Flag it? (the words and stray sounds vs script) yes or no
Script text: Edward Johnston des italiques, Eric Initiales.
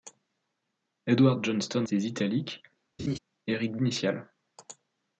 yes